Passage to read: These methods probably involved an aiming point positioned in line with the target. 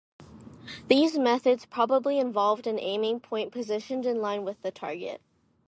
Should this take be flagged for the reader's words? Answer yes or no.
no